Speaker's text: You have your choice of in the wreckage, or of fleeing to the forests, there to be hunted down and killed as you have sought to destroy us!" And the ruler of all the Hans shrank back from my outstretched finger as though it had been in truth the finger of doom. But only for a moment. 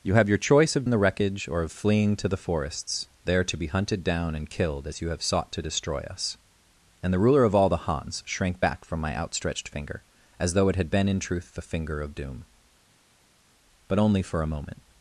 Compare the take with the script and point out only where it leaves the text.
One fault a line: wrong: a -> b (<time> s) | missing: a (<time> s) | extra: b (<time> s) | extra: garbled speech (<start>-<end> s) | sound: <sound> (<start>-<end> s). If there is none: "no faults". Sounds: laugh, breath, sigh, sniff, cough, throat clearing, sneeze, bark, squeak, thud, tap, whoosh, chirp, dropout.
no faults